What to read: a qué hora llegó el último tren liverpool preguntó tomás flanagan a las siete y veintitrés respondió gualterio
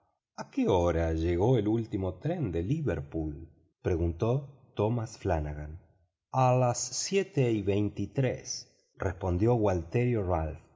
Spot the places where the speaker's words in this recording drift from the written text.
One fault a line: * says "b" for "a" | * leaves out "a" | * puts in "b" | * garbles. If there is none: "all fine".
* puts in "de"